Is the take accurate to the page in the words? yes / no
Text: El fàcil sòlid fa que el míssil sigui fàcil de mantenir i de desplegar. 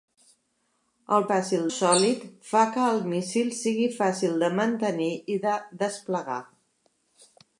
yes